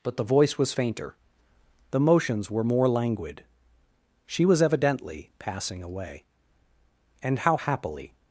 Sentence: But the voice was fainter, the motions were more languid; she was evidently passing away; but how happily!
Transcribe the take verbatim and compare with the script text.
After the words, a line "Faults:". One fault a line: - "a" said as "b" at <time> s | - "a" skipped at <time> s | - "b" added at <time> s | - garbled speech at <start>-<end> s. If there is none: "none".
But the voice was fainter, the motions were more languid; she was evidently passing away; and how happily!
Faults:
- "but" said as "and" at 7.2 s